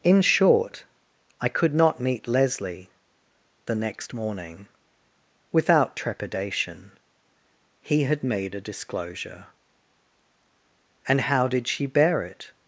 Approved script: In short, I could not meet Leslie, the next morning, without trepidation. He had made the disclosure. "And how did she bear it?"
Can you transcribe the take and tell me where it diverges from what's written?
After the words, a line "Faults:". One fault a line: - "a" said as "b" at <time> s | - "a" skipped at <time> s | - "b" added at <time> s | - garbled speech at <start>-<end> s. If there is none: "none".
In short, I could not meet Leslie, the next morning, without trepidation. He had made a disclosure. "And how did she bear it?"
Faults:
- "the" said as "a" at 8.5 s